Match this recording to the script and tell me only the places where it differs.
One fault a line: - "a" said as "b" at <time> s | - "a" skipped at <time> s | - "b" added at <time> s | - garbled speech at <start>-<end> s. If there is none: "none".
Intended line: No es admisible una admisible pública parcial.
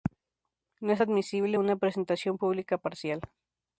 - "admisible" said as "presentación" at 1.8 s